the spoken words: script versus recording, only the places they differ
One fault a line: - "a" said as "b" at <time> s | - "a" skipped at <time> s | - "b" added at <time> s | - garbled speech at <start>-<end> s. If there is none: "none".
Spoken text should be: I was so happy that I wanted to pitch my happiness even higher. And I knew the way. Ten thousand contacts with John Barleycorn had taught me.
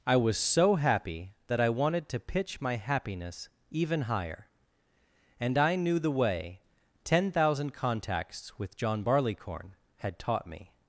none